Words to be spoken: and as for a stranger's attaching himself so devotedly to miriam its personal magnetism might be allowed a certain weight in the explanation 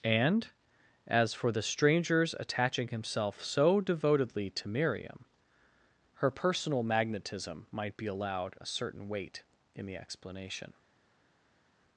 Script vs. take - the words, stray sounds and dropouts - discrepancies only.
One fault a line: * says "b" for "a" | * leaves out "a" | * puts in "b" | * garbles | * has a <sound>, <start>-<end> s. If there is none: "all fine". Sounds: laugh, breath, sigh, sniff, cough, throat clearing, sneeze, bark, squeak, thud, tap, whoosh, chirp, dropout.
* says "the" for "a"
* says "her" for "its"